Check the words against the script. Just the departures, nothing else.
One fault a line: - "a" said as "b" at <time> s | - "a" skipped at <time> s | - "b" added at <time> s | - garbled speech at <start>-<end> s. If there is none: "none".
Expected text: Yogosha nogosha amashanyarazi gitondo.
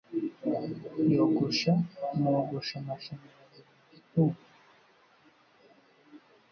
- "buri" added at 3.7 s